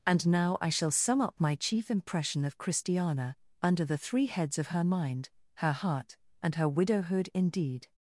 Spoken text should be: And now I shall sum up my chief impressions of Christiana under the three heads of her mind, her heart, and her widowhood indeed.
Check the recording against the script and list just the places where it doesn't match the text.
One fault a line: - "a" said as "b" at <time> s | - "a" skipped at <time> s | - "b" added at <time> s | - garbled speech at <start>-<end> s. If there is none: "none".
- "impressions" said as "impression" at 1.9 s